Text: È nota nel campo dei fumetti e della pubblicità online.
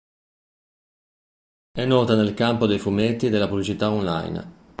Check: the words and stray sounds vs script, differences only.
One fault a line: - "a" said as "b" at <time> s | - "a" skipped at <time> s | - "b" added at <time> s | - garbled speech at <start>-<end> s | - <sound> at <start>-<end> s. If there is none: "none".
none